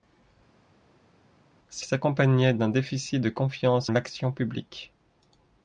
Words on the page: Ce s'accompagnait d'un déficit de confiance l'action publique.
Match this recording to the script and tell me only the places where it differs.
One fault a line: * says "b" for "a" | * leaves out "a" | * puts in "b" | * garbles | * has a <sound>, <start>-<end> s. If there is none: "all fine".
all fine